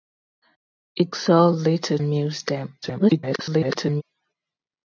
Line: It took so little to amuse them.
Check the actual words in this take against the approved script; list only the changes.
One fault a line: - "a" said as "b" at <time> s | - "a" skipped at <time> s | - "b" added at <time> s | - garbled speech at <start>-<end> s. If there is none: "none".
- "took" skipped at 1.1 s
- "to" skipped at 2.0 s
- garbled speech at 2.8-4.0 s